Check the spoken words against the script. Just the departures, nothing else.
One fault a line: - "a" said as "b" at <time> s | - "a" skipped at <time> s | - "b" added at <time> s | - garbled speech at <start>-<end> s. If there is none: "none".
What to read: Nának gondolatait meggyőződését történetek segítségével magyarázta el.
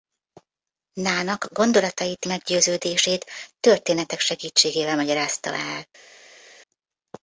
none